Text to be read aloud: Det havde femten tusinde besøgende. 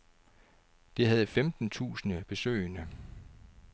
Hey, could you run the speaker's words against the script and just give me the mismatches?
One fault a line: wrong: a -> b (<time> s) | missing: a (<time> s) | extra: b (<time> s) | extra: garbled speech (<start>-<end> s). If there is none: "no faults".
no faults